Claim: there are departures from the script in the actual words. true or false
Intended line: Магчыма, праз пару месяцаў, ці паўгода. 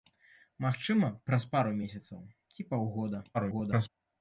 true